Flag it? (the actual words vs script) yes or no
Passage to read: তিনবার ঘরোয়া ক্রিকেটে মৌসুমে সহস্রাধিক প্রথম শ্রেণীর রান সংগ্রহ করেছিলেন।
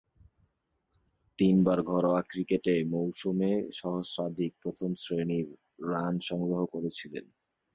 no